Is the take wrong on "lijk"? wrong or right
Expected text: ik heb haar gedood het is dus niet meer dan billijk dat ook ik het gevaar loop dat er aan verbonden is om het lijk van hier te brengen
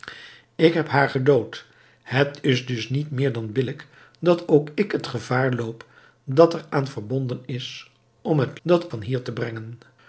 wrong